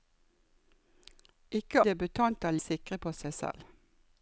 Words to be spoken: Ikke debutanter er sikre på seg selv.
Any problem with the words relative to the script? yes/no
no